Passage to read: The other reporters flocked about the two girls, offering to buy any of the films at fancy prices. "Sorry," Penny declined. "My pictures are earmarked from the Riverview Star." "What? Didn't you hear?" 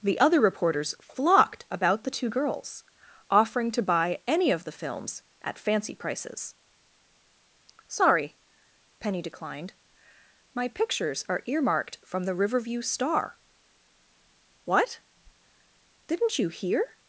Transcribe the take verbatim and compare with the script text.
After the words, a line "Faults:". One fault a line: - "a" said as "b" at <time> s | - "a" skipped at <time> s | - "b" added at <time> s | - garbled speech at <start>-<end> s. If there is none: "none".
The other reporters flocked about the two girls, offering to buy any of the films at fancy prices. "Sorry," Penny declined. "My pictures are earmarked from the Riverview Star." "What? Didn't you hear?"
Faults:
none